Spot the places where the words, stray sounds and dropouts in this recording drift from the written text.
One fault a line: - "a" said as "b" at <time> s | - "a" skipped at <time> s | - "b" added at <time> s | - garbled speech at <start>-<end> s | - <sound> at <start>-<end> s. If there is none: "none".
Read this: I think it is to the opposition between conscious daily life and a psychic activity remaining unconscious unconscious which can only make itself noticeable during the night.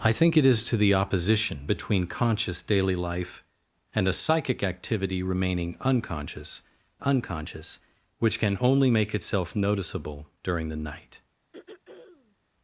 - throat clearing at 11.5-12.4 s